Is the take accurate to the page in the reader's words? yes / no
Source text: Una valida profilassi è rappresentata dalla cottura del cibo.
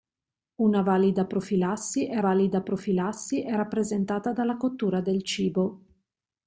no